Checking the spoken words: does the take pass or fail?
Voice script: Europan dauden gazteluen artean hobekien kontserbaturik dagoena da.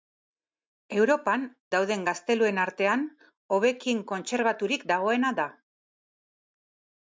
pass